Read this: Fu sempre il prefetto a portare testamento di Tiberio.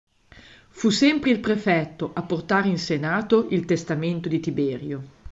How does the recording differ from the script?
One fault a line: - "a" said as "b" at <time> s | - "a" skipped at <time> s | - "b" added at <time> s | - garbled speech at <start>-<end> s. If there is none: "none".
- "in Senato il" added at 2.7 s